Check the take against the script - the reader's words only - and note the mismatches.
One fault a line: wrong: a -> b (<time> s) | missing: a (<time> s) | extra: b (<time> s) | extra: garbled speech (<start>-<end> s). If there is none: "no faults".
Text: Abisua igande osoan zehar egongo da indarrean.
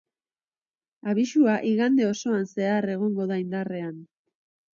no faults